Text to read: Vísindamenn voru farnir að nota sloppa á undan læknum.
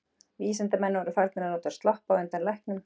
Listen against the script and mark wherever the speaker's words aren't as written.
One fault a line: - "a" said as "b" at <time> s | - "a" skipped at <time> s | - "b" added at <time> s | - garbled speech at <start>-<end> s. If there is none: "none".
none